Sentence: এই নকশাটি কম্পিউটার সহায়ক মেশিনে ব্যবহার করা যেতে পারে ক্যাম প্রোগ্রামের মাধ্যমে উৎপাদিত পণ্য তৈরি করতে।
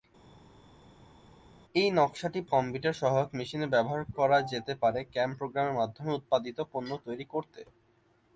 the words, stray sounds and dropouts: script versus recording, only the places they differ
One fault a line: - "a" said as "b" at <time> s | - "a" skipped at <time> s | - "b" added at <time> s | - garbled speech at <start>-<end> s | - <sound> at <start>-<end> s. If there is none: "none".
none